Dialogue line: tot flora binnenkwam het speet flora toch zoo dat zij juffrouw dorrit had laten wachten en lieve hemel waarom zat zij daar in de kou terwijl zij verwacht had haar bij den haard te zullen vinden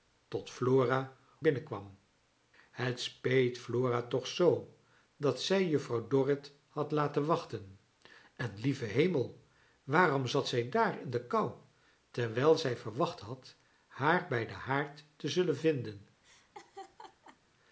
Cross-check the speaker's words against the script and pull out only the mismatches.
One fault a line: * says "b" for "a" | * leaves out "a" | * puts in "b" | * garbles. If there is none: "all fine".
all fine